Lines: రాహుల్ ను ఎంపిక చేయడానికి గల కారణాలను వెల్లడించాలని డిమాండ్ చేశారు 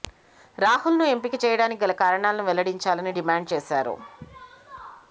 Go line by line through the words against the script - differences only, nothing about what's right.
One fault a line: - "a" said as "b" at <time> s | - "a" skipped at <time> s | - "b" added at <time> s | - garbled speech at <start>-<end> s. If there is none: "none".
none